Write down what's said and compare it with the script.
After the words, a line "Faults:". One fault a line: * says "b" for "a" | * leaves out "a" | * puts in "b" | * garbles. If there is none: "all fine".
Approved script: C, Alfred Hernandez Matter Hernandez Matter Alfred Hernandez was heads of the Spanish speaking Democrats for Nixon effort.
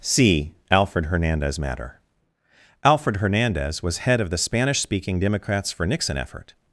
C, Alfred Hernandez Matter Alfred Hernandez was head of the Spanish speaking Democrats for Nixon effort.
Faults:
* leaves out "Hernandez Matter"
* says "head" for "heads"